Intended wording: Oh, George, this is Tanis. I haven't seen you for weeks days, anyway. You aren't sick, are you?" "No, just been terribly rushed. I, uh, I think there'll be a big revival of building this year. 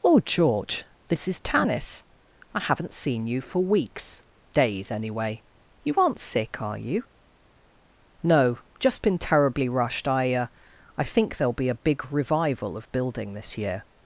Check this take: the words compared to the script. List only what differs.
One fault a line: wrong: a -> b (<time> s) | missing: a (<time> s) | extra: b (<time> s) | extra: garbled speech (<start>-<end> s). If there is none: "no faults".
no faults